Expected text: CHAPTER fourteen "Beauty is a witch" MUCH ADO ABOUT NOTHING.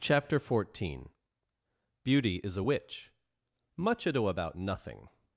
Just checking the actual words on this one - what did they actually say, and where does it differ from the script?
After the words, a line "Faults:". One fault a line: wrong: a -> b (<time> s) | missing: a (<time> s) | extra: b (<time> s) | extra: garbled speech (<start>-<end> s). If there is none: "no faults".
CHAPTER fourteen "Beauty is a witch" MUCH ADO ABOUT NOTHING.
Faults:
no faults